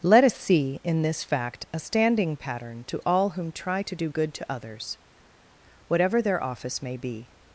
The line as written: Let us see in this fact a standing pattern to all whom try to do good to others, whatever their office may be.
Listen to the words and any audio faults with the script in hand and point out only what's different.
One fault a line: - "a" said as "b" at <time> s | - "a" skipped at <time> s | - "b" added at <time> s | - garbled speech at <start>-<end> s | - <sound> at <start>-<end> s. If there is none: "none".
none